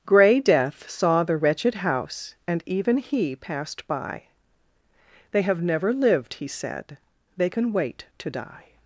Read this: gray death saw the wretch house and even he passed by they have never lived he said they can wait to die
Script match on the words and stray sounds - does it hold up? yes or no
no